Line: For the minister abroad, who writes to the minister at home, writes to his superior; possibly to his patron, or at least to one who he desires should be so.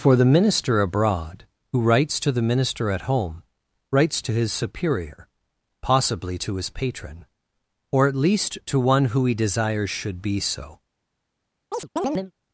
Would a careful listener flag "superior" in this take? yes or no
no